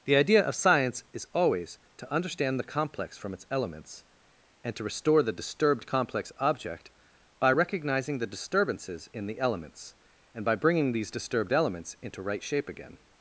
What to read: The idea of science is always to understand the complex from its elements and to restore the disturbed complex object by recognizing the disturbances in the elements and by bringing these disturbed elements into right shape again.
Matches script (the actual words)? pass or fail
pass